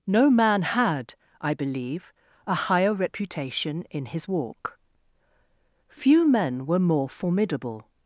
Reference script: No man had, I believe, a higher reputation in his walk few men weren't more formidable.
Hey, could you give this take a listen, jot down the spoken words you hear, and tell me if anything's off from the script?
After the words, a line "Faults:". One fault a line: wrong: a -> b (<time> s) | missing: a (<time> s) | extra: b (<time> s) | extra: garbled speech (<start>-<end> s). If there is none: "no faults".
No man had, I believe, a higher reputation in his walk few men were more formidable.
Faults:
wrong: weren't -> were (6.7 s)